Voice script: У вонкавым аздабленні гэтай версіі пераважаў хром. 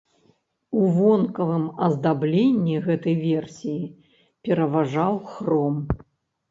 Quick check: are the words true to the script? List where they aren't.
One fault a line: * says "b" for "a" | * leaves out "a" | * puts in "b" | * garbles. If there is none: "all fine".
all fine